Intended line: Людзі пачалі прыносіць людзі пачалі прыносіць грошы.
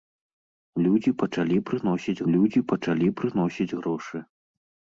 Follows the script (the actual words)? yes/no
yes